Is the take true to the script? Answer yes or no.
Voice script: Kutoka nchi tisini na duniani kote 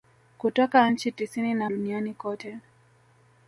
yes